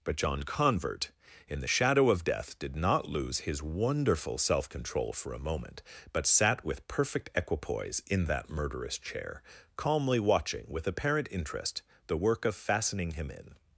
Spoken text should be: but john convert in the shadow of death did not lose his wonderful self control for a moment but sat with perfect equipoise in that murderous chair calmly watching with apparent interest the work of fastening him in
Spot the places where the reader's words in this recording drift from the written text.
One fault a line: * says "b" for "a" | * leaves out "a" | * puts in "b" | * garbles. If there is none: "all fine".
all fine